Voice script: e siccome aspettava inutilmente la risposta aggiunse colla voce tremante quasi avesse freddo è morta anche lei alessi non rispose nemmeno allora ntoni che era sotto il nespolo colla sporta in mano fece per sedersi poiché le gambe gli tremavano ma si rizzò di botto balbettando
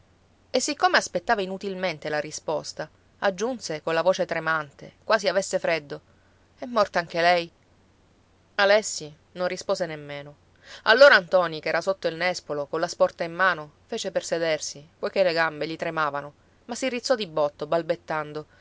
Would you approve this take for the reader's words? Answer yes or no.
yes